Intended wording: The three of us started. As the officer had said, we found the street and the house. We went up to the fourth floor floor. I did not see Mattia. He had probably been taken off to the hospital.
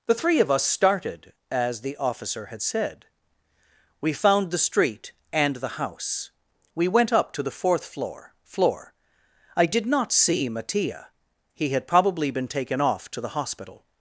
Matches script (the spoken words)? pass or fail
pass